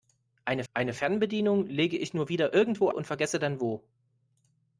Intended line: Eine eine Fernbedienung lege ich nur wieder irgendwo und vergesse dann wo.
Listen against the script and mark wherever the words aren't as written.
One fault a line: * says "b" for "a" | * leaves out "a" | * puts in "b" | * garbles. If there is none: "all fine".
all fine